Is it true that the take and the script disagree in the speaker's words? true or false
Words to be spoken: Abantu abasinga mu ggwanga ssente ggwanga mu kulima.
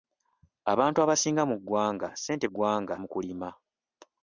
false